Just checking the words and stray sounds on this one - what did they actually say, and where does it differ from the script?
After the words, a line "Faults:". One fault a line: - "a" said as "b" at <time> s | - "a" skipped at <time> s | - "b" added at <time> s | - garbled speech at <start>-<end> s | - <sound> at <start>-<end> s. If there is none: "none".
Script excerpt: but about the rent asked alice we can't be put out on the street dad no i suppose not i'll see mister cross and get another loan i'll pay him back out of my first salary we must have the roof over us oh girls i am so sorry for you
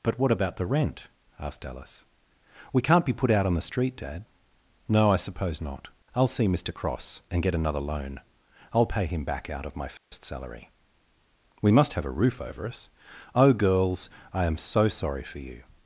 but what about the rent asked alice we can't be put out on the street dad no i suppose not i'll see mister cross and get another loan i'll pay him back out of my first salary we must have a roof over us oh girls i am so sorry for you
Faults:
- "what" added at 0.2 s
- dropout at 10.0-10.1 s
- "the" said as "a" at 12.1 s